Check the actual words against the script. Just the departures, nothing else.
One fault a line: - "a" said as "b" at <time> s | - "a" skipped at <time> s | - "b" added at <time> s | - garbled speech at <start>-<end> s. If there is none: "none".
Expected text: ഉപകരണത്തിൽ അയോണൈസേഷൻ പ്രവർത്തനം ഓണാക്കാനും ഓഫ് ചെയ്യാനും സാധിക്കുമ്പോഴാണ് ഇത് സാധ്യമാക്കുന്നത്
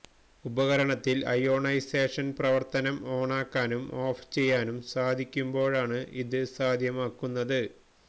none